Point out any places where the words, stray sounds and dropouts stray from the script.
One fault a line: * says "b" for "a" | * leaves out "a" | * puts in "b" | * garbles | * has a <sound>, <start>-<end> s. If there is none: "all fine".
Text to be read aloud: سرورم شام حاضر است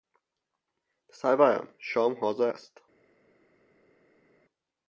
all fine